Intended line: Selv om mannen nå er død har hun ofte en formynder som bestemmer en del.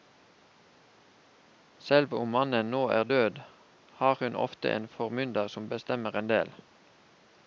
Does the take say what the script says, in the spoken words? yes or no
yes